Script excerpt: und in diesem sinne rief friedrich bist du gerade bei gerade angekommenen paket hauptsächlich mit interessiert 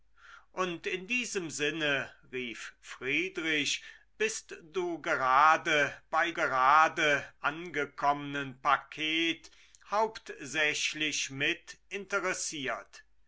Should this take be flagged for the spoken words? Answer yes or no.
no